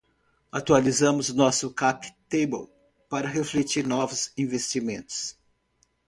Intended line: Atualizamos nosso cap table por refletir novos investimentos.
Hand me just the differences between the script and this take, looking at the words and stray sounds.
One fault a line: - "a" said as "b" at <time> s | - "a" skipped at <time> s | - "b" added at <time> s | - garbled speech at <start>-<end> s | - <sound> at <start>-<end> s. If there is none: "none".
- "por" said as "para" at 3.1 s